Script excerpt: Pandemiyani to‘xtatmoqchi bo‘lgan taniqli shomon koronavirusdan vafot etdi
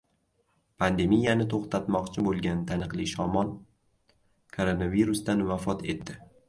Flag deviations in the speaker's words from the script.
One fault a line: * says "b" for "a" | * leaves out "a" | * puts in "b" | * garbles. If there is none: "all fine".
all fine